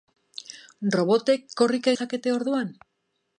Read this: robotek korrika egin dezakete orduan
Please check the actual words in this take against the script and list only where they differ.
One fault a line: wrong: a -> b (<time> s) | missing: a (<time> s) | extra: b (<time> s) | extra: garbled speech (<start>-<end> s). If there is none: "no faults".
missing: egin (1.9 s)